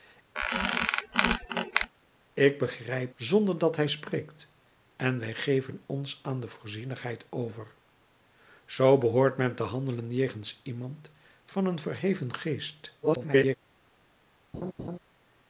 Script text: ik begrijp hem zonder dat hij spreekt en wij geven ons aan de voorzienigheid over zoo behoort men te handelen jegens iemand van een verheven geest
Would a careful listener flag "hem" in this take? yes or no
yes